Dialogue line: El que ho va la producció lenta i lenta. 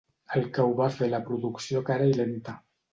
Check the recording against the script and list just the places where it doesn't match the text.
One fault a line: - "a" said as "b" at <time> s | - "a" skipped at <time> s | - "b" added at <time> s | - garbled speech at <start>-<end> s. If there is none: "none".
- "fer" added at 0.9 s
- "lenta" said as "cara" at 1.9 s